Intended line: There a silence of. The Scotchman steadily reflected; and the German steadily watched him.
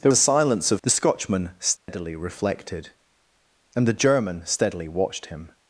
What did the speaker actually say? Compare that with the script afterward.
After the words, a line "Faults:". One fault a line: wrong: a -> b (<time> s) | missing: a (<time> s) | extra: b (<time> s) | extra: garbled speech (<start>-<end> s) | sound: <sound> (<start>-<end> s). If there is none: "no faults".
There a silence of. The Scotchman steadily reflected; and the German steadily watched him.
Faults:
sound: dropout (1.8-1.9 s)